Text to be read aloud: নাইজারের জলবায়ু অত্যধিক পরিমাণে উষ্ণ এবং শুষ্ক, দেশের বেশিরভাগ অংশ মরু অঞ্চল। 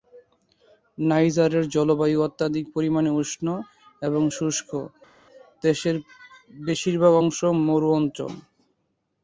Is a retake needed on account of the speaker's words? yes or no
no